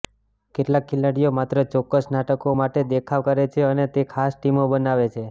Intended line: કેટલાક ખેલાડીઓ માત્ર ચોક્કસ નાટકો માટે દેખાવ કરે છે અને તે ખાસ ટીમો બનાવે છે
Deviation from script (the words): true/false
false